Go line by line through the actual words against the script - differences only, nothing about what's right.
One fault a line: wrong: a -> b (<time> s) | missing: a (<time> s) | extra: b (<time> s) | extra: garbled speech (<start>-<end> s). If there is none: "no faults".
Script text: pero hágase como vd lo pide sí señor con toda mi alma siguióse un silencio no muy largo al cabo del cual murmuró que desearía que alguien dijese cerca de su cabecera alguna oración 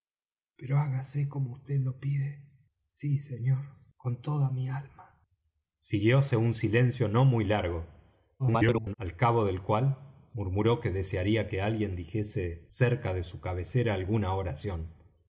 extra: garbled speech (8.4-8.9 s)